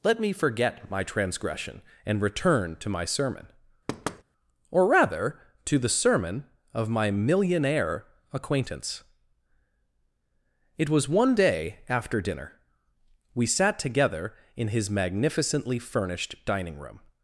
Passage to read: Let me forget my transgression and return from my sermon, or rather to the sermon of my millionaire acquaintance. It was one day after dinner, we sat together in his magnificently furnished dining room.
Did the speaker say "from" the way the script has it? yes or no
no